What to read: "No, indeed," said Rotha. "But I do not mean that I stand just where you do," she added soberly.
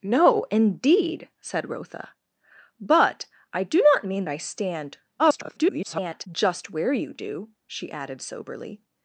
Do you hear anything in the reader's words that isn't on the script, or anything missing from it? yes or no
yes